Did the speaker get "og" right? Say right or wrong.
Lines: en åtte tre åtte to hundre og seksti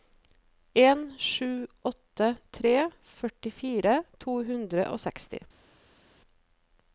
right